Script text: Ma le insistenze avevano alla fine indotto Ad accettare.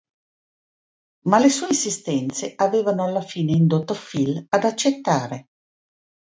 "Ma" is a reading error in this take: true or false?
false